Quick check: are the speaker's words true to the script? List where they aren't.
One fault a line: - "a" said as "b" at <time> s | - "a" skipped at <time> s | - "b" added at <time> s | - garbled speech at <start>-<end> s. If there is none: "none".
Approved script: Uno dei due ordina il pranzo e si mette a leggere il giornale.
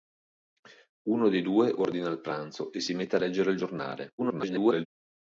- garbled speech at 4.2-4.9 s